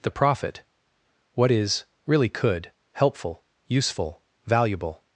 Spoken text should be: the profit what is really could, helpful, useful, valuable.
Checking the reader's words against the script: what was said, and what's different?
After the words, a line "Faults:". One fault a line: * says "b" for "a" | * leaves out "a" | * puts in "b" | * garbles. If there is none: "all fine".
the profit what is really could, helpful, useful, valuable.
Faults:
all fine